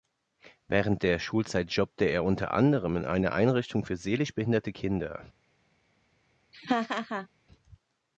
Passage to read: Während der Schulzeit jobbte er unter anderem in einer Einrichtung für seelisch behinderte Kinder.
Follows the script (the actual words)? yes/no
yes